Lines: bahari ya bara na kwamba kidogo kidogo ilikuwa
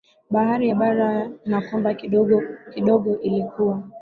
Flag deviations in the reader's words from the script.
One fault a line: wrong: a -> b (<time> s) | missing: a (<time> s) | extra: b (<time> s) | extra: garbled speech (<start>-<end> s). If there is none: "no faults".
no faults